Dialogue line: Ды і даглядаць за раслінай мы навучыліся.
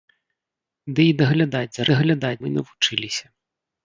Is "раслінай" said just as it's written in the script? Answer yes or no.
no